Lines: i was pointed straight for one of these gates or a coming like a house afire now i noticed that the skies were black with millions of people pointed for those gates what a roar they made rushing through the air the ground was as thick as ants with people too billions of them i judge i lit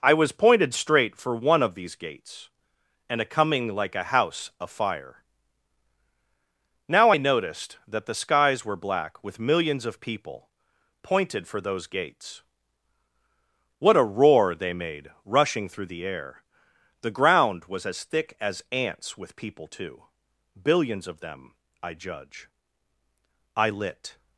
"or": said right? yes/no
no